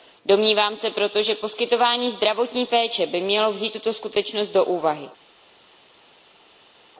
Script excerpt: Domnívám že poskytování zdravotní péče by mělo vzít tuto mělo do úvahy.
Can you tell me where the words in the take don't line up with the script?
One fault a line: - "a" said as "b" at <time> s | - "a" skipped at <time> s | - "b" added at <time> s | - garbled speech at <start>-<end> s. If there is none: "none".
- "se proto" added at 0.8 s
- "mělo" said as "skutečnost" at 3.9 s